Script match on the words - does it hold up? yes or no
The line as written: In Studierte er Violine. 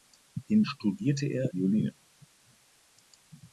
yes